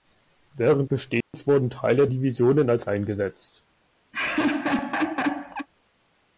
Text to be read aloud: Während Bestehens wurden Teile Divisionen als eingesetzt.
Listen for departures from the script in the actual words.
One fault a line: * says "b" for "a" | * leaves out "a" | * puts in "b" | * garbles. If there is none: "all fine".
all fine